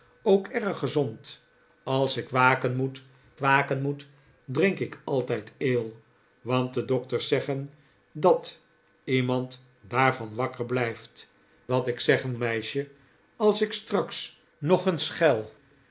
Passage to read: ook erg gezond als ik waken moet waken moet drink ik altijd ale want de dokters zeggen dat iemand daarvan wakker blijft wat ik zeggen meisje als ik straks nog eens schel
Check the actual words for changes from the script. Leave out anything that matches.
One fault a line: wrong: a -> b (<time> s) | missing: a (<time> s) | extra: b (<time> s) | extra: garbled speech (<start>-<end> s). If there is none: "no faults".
no faults